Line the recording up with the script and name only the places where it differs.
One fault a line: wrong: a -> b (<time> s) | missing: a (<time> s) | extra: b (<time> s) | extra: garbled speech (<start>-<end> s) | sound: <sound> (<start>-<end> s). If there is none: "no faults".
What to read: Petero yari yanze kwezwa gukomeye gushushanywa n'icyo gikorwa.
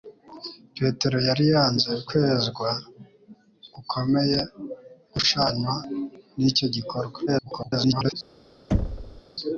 extra: garbled speech (7.3-8.1 s)
sound: thud (8.7-9.2 s)